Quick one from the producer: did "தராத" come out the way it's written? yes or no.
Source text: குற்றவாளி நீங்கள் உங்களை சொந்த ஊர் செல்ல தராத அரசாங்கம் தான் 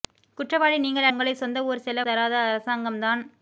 yes